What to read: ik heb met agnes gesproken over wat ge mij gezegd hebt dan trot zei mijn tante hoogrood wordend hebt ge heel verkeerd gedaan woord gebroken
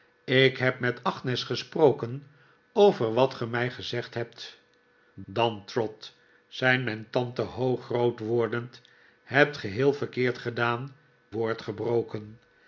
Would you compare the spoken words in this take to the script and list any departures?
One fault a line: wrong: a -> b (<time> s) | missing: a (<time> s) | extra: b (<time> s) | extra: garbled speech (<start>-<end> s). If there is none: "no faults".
no faults